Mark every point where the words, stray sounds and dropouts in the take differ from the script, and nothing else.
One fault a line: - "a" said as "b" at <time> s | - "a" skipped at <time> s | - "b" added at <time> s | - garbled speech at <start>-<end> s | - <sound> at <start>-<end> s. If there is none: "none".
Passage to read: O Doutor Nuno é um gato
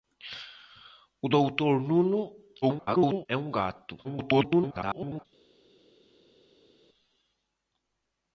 - garbled speech at 2.6-3.3 s
- garbled speech at 4.0-5.3 s